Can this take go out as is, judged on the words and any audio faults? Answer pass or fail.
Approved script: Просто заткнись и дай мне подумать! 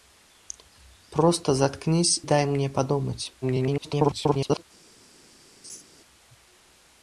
fail